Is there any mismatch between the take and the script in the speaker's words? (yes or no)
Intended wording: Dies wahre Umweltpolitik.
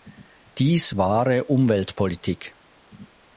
no